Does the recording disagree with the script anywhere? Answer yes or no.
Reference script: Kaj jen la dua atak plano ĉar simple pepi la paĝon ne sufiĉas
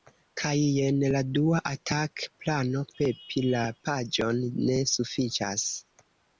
yes